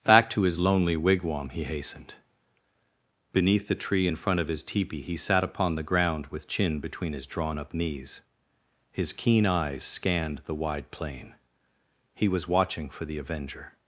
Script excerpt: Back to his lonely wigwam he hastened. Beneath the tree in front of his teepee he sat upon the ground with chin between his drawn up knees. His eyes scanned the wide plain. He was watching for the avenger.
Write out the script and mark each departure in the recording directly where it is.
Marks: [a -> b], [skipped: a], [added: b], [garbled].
Back to his lonely wigwam he hastened. Beneath the tree in front of his teepee he sat upon the ground with chin between his drawn up knees. His [added: keen] eyes scanned the wide plain. He was watching for the avenger.